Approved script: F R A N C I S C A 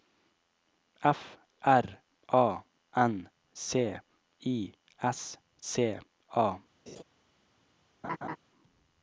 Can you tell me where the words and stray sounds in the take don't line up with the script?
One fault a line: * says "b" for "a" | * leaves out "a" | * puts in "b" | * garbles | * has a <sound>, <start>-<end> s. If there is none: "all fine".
* has a laugh, 6.9-7.0 s
* has a laugh, 8.0-8.4 s